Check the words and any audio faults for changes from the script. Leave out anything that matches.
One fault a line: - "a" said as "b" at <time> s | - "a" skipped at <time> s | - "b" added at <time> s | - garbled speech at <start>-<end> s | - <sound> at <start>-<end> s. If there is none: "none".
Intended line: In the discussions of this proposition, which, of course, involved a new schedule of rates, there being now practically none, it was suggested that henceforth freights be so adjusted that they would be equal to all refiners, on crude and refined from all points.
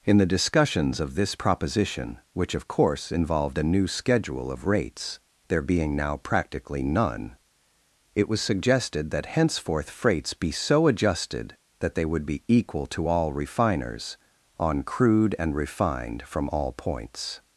none